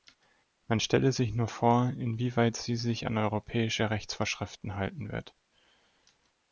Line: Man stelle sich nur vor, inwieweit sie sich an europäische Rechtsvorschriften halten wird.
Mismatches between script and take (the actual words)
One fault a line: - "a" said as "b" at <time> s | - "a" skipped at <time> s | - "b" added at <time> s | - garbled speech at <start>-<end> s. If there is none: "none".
none